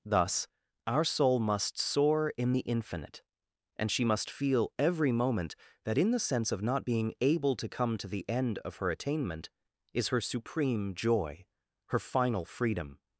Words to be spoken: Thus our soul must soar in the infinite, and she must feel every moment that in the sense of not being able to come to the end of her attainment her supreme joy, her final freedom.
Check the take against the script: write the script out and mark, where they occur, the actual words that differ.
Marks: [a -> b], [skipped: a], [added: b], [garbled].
Thus our soul must soar in the infinite, and she must feel every moment that in the sense of not being able to come to the end of her attainment [added: is] her supreme joy, her final freedom.